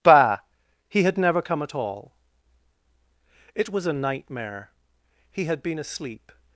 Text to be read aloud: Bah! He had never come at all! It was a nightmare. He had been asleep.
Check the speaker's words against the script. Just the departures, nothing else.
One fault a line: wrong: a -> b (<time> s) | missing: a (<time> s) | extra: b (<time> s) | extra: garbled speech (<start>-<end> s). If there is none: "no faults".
no faults